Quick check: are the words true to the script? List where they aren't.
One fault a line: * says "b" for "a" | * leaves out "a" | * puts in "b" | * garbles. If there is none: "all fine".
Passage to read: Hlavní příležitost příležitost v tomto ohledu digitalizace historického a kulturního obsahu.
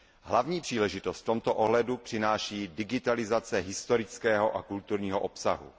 * leaves out "příležitost"
* puts in "přináší"